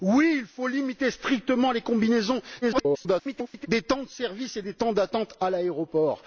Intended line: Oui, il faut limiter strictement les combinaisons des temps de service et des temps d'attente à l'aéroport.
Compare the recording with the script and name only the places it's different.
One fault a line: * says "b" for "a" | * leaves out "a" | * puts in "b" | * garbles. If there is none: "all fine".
* garbles